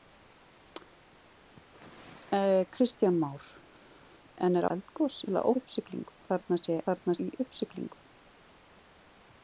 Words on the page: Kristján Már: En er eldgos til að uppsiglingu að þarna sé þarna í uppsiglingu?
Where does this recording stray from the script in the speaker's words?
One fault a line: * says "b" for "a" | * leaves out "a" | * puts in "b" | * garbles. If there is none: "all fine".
all fine